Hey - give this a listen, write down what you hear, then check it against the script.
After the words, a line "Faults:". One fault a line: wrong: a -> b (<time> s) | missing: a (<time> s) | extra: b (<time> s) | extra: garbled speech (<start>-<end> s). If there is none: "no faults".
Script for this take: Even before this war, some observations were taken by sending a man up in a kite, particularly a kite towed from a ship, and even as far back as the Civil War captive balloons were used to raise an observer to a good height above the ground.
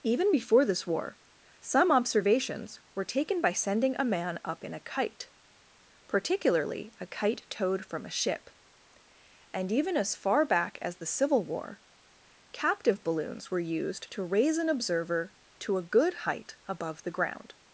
Even before this war, some observations were taken by sending a man up in a kite, particularly a kite towed from a ship, and even as far back as the Civil War captive balloons were used to raise an observer to a good height above the ground.
Faults:
no faults